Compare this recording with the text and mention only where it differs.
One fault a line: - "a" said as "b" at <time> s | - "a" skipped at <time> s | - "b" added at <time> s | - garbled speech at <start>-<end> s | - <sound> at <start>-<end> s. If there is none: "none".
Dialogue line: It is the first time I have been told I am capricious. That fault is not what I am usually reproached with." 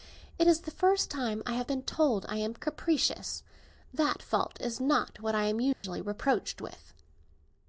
- dropout at 5.7-5.8 s